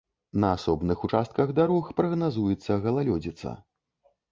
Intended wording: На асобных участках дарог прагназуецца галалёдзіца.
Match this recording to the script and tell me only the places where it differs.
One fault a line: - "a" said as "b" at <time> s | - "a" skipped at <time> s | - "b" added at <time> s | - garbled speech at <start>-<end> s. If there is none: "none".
none